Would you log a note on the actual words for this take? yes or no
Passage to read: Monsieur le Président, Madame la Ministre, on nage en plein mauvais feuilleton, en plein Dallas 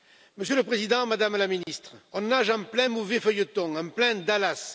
no